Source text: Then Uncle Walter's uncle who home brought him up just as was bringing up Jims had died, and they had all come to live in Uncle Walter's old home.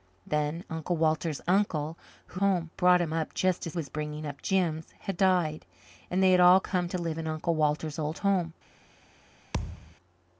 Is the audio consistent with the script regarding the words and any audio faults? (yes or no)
no